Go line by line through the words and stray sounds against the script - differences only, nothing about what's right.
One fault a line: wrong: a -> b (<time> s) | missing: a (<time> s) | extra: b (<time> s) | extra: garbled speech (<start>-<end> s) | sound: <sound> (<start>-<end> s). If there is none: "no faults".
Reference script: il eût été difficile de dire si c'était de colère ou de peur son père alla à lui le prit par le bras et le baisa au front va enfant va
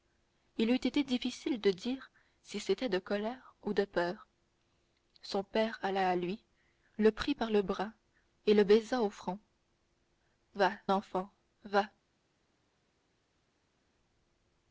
no faults